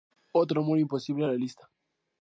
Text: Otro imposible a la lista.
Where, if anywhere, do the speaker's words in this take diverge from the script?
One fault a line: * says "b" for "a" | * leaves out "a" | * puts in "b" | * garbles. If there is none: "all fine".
* puts in "amor"